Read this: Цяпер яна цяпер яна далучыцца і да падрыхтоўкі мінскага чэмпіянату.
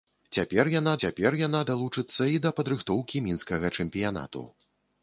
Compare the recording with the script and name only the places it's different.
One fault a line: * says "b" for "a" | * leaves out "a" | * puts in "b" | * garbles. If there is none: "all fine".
all fine